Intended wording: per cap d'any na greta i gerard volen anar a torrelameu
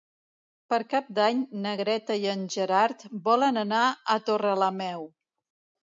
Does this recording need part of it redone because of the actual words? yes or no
yes